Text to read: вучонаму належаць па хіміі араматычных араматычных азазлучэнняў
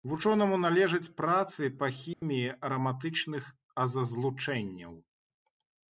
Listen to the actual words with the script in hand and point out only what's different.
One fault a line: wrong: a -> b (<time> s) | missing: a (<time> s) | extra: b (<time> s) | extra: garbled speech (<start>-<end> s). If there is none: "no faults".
extra: працы (1.2 s)
missing: араматычных (3.4 s)